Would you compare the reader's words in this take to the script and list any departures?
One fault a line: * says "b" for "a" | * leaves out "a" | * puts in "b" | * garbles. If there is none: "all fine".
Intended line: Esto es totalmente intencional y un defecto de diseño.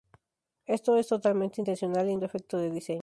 all fine